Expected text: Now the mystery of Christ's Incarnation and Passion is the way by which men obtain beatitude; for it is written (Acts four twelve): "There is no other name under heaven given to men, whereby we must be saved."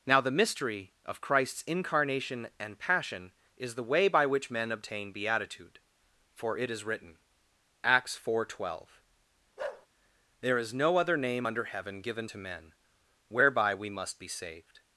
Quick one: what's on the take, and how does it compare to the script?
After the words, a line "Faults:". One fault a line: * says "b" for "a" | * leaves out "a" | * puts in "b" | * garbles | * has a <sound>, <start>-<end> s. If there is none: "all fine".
Now the mystery of Christ's Incarnation and Passion is the way by which men obtain beatitude; for it is written (Acts four twelve): "There is no other name under heaven given to men, whereby we must be saved."
Faults:
* has a bark, 9.6-9.9 s